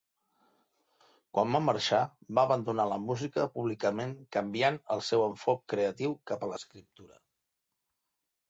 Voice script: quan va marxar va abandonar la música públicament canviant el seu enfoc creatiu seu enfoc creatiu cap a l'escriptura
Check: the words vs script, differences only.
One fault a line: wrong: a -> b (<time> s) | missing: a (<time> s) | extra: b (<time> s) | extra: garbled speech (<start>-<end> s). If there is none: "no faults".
missing: seu enfoc creatiu (6.2 s)